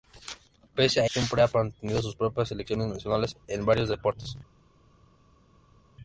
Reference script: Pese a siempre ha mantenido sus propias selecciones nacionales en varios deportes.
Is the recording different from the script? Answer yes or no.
no